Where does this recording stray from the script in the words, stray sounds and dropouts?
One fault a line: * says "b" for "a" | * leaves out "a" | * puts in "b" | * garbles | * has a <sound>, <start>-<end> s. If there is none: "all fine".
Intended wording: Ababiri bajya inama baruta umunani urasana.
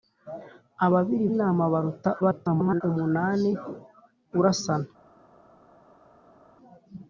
* leaves out "bajya"
* garbles